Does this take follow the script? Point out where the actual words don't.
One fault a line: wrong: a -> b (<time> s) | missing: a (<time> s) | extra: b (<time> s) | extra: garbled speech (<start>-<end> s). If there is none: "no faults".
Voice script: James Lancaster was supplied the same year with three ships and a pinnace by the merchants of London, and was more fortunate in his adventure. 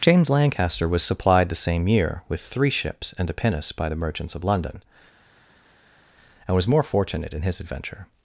no faults